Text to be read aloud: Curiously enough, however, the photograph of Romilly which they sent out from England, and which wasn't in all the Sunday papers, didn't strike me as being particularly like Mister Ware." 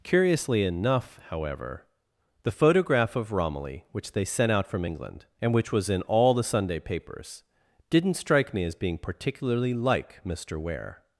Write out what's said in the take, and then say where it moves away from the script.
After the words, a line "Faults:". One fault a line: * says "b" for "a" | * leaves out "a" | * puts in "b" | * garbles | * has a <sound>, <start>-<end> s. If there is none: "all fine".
Curiously enough, however, the photograph of Romilly which they sent out from England, and which was in all the Sunday papers, didn't strike me as being particularly like Mister Ware."
Faults:
* says "was" for "wasn't"